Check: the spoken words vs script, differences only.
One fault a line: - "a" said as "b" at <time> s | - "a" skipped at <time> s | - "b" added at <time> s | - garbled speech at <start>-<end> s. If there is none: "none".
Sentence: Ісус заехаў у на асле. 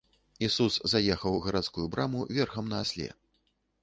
- "гарадскую браму верхам" added at 1.4 s